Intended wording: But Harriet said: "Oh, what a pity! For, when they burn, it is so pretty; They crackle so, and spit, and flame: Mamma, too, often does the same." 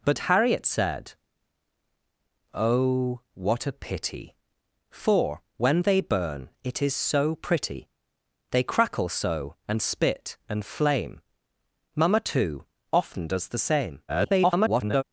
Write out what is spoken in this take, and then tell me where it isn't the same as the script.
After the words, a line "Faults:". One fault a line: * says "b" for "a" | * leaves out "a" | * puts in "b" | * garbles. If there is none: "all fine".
But Harriet said: "Oh, what a pity! For, when they burn, it is so pretty; They crackle so, and spit, and flame: Mamma, too, often does the same." [garbled]
Faults:
* garbles